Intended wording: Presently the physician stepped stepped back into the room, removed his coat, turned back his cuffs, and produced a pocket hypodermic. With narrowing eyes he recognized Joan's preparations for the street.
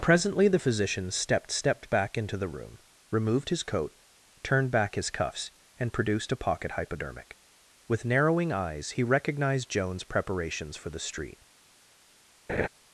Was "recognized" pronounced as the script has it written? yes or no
yes